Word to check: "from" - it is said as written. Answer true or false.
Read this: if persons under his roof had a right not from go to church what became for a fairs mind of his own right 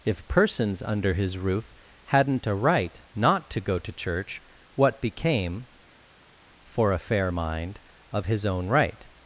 false